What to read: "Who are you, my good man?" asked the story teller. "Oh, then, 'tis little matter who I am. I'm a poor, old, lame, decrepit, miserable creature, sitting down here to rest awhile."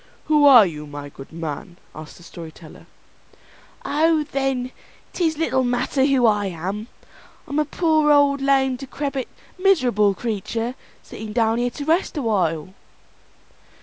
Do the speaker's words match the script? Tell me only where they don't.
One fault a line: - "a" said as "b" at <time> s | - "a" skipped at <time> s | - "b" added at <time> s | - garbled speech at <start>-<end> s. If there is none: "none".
none